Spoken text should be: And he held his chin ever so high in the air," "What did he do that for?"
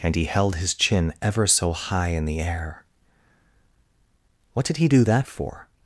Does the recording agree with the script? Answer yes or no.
yes